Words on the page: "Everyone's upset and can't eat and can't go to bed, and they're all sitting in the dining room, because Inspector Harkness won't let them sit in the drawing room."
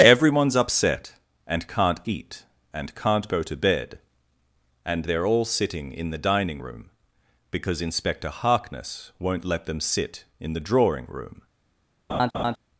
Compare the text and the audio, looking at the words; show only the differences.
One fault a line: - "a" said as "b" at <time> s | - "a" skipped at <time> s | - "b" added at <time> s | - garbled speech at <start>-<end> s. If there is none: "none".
none